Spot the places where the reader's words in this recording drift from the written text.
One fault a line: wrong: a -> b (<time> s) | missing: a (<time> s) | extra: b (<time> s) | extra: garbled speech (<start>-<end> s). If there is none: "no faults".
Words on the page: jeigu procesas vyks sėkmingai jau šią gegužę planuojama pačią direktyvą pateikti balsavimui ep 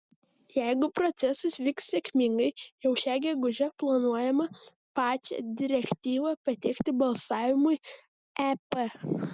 no faults